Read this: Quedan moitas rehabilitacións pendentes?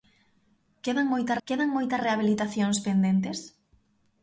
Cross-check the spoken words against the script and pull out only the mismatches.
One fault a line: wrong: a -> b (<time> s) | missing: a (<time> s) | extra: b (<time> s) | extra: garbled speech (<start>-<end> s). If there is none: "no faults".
extra: quedan moitas (1.5 s)